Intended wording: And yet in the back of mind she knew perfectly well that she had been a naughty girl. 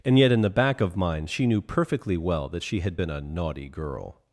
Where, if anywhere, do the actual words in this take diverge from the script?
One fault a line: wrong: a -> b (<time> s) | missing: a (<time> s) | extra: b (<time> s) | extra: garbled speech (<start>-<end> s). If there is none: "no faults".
no faults